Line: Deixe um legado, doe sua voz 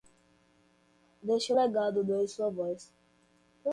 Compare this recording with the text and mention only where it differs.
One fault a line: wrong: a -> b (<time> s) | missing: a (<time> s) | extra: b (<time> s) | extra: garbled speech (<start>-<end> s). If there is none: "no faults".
no faults